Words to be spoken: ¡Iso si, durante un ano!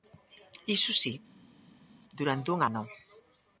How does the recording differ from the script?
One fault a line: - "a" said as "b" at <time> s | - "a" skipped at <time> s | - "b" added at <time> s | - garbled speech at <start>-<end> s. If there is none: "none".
none